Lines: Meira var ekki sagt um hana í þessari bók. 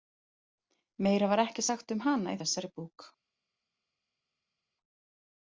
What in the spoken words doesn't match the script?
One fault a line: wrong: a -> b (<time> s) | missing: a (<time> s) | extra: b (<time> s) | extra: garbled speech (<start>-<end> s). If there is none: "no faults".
no faults